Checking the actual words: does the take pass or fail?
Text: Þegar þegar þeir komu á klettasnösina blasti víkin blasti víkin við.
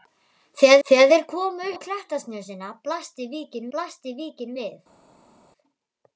pass